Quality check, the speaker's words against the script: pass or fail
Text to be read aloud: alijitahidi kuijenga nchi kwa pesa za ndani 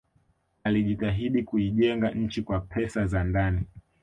pass